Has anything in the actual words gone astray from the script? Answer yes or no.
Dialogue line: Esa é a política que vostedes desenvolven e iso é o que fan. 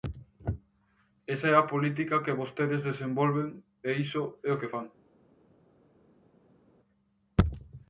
no